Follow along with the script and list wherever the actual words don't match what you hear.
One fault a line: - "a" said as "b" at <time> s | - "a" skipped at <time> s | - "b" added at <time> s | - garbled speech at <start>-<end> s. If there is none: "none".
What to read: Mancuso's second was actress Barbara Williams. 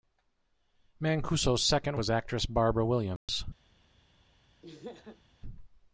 none